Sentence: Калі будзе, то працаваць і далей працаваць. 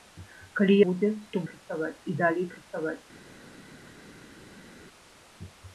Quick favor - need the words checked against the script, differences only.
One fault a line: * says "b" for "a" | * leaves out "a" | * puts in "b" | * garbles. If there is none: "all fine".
all fine